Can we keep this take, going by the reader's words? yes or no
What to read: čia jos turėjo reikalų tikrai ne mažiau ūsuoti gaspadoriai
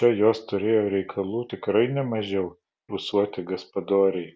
yes